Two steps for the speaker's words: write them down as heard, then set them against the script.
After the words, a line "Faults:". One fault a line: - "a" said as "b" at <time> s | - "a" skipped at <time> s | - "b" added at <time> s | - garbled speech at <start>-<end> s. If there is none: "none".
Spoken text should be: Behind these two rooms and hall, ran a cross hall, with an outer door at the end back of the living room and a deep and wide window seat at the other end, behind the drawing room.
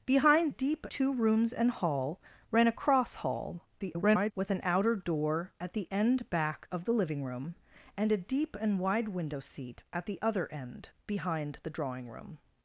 Behind deep two rooms and hall, ran a cross hall, [garbled] with an outer door at the end back of the living room and a deep and wide window seat at the other end, behind the drawing room.
Faults:
- "these" said as "deep" at 0.5 s
- garbled speech at 3.8-4.3 s